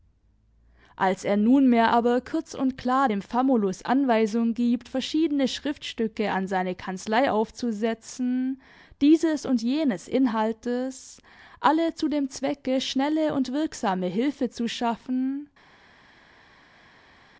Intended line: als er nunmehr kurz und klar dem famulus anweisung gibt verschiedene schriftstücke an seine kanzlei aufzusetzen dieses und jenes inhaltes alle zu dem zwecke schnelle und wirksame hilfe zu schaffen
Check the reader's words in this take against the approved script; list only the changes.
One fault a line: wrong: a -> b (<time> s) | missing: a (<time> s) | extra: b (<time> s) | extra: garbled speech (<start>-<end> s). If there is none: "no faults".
extra: aber (1.9 s)